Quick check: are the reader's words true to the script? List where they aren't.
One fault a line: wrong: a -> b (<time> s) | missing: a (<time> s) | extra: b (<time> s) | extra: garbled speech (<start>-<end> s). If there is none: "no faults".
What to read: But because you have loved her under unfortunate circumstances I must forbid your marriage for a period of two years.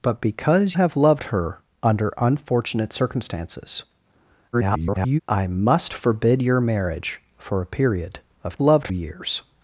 missing: you (0.8 s)
extra: garbled speech (4.5-5.2 s)
wrong: two -> loved (8.6 s)